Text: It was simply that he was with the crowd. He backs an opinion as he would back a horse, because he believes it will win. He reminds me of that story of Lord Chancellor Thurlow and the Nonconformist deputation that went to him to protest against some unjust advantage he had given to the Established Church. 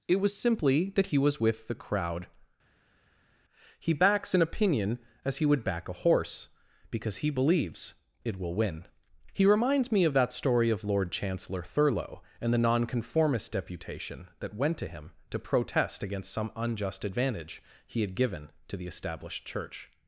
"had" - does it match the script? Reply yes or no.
yes